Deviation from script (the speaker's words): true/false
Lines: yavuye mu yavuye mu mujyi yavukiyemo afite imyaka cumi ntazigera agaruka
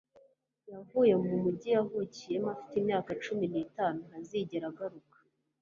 true